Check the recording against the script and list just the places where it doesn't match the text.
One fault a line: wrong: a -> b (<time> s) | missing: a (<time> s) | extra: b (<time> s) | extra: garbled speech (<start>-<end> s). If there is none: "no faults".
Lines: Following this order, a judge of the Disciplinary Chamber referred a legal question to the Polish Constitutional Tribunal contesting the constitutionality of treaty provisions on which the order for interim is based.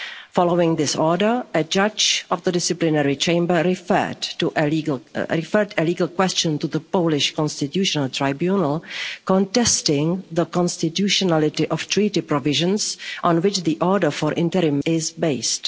no faults